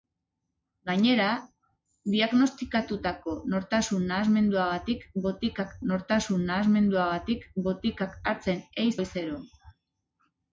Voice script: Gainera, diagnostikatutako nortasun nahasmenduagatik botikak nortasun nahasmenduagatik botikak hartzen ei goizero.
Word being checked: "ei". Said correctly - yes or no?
yes